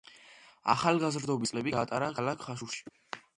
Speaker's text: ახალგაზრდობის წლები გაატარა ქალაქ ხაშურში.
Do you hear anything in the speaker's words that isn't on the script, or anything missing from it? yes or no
no